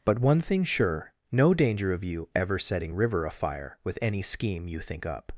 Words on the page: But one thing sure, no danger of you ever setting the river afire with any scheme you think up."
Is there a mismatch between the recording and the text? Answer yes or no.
yes